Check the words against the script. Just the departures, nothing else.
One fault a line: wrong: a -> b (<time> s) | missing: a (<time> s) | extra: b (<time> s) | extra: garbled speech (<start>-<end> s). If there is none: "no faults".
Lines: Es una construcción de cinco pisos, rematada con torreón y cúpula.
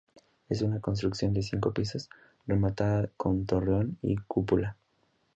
no faults